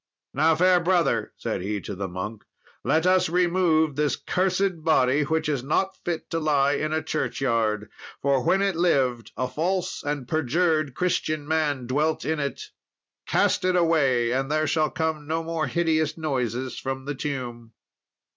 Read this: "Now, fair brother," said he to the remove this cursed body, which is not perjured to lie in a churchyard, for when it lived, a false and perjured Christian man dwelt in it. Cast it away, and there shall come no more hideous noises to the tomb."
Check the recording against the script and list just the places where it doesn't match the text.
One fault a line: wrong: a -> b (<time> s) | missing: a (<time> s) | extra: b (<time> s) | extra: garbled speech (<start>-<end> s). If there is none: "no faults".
extra: monk let us (2.1 s)
wrong: perjured -> fit (6.0 s)
wrong: to -> from (16.8 s)